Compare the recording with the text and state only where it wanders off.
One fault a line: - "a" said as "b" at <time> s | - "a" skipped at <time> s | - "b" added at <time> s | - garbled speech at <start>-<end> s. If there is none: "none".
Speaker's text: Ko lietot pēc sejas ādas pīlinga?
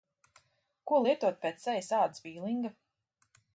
none